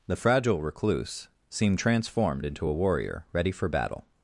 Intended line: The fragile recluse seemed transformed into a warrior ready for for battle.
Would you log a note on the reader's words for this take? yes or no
yes